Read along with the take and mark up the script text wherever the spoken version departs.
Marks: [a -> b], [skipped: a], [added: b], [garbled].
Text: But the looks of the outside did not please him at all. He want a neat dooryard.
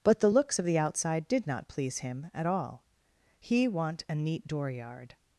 But the looks of the outside did not please him at all. He want a neat dooryard.